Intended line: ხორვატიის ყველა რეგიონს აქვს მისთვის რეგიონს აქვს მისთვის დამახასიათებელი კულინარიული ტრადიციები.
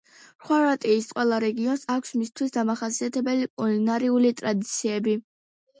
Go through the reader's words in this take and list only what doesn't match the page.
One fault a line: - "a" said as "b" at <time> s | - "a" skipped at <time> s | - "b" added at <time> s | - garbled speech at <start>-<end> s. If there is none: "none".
- "რეგიონს აქვს მისთვის" skipped at 2.6 s